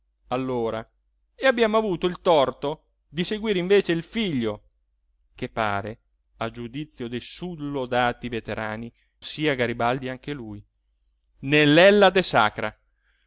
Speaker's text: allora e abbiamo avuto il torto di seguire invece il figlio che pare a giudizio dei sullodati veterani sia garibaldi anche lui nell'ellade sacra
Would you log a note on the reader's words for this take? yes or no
no